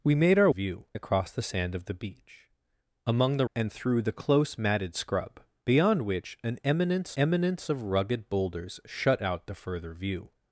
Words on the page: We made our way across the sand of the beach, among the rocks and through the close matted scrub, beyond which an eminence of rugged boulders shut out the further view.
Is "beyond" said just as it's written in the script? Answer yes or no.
yes